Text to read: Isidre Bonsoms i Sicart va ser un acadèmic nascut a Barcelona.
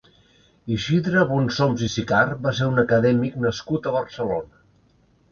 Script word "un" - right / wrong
right